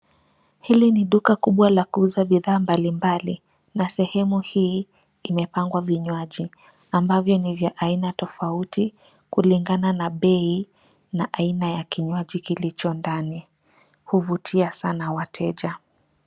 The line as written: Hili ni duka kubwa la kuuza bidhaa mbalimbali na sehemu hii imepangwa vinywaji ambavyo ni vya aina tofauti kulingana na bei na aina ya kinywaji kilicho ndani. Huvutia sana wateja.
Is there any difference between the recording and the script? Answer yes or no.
no